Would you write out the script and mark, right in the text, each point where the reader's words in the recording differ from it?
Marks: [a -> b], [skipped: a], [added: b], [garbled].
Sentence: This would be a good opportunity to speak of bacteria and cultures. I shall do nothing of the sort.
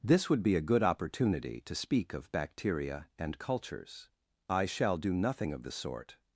This would be a good opportunity to speak of bacteria and cultures. I shall do nothing of the sort.